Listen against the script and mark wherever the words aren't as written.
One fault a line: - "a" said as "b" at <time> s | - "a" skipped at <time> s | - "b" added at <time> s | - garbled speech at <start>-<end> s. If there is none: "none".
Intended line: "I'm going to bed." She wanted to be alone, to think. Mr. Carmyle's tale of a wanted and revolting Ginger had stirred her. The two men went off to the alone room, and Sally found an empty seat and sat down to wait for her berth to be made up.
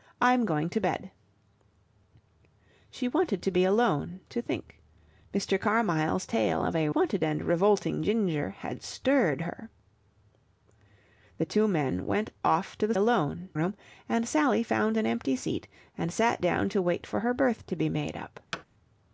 none